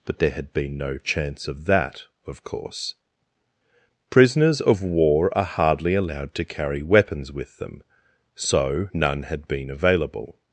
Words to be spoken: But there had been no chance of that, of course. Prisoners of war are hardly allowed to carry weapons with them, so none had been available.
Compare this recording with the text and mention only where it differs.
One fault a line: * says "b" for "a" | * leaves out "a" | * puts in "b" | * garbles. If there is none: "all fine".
all fine